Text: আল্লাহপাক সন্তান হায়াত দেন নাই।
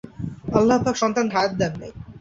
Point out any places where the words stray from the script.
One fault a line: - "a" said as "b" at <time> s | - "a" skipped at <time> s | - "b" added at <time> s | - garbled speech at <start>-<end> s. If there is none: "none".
none